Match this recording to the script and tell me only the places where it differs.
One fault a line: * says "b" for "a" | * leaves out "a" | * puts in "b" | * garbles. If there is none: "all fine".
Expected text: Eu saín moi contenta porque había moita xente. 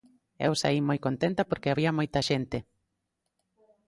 all fine